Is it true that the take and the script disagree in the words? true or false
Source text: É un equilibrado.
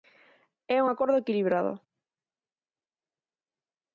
true